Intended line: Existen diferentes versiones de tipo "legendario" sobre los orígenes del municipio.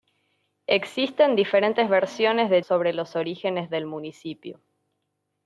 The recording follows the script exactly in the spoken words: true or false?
false